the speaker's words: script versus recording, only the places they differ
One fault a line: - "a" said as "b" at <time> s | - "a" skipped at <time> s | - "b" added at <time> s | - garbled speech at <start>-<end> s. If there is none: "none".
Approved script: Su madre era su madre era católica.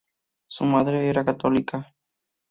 - "su madre era" skipped at 1.3 s